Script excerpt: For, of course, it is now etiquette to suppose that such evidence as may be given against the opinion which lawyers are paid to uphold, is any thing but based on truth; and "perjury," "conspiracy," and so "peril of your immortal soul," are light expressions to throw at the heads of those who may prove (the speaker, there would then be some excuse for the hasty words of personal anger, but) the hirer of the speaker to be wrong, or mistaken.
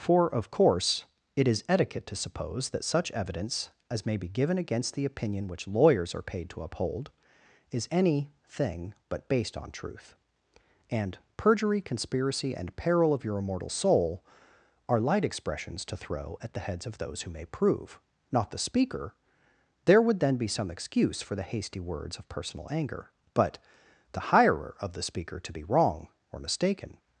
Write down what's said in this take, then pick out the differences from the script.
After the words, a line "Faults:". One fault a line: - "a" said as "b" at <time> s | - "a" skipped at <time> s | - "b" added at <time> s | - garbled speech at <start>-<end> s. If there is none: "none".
For, of course, it is etiquette to suppose that such evidence as may be given against the opinion which lawyers are paid to uphold, is any thing but based on truth; and "perjury," "conspiracy," and "peril of your immortal soul," are light expressions to throw at the heads of those who may prove (not the speaker, there would then be some excuse for the hasty words of personal anger, but) the hirer of the speaker to be wrong, or mistaken.
Faults:
- "now" skipped at 1.6 s
- "so" skipped at 12.8 s
- "not" added at 18.3 s